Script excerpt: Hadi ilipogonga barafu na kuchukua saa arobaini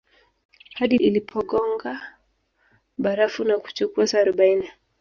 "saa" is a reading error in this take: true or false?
false